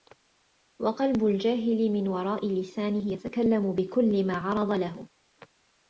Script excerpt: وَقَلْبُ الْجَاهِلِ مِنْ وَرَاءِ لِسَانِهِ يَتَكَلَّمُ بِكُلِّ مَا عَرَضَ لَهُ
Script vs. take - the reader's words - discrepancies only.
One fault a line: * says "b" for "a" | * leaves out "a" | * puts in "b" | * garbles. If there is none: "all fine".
all fine